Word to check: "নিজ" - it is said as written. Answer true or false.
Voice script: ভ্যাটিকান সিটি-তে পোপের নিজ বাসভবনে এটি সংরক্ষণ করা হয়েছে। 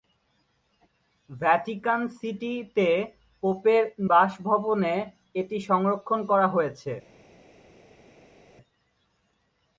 false